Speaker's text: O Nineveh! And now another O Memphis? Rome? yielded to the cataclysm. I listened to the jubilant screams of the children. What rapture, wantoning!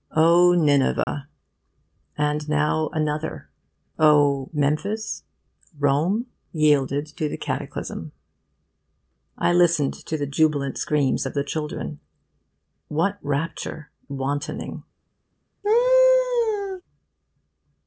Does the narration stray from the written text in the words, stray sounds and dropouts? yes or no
yes